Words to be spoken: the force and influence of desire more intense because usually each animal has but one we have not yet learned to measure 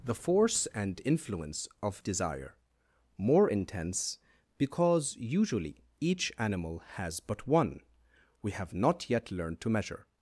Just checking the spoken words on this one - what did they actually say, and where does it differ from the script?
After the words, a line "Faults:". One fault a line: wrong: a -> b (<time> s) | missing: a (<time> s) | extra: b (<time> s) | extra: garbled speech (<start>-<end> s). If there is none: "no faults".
the force and influence of desire more intense because usually each animal has but one we have not yet learned to measure
Faults:
no faults